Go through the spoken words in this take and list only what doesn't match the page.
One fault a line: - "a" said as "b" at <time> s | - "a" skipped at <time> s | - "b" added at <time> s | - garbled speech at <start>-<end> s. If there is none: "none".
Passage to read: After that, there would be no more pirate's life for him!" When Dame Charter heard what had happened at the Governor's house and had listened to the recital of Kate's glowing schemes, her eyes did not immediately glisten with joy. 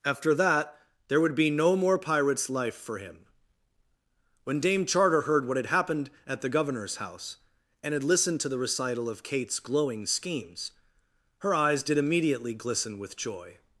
- "not" skipped at 12.0 s